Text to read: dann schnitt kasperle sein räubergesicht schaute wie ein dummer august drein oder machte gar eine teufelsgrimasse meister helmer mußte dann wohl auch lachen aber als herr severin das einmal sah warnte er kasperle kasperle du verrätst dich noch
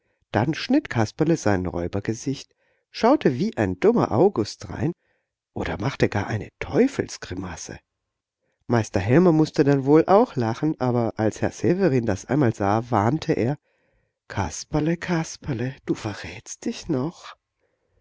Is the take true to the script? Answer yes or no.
yes